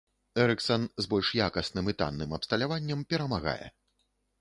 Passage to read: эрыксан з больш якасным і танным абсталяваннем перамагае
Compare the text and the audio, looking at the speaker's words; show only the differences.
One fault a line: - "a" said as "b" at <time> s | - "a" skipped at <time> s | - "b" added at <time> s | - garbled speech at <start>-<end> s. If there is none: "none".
none